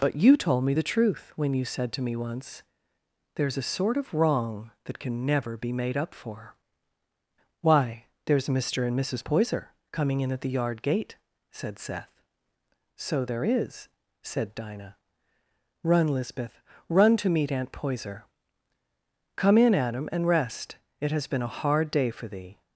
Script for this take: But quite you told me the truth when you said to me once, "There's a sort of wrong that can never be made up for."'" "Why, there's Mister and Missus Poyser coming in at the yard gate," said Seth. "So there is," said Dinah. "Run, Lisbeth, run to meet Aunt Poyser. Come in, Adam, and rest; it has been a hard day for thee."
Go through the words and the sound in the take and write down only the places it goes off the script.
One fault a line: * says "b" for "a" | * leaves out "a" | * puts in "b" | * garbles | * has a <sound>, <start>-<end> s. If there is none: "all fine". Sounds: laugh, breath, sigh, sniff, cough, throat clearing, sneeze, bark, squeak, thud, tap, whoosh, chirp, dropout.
* leaves out "quite"